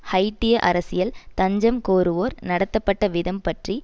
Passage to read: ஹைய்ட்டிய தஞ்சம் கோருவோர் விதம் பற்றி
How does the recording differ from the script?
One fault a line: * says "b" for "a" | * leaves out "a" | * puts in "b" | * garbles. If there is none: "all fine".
* puts in "அரசியல்"
* puts in "நடத்தப்பட்ட"